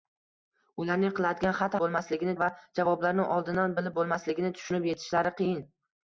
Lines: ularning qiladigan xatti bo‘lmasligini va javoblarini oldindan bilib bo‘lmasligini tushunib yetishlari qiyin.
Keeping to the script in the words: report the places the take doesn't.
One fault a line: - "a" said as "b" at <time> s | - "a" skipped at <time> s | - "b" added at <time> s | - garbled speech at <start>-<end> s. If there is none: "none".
none